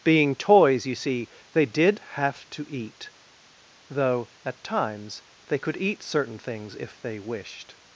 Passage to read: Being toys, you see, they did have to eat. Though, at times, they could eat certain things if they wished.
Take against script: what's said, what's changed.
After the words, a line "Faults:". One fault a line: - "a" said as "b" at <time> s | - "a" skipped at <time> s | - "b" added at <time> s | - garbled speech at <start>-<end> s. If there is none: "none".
Being toys, you see, they did have to eat. Though, at times, they could eat certain things if they wished.
Faults:
none